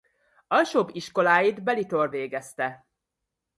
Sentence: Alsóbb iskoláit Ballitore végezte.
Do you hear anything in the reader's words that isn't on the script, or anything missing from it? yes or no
no